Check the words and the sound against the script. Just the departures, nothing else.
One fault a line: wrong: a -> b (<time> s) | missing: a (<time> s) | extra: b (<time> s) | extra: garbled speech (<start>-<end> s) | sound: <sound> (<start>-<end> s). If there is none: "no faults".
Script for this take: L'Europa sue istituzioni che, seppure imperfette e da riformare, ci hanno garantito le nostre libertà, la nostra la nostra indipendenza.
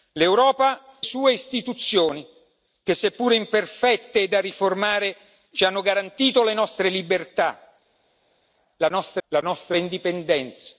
no faults